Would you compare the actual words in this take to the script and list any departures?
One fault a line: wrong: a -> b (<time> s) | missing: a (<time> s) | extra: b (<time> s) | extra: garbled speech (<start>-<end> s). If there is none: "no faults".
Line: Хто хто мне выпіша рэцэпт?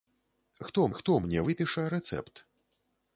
no faults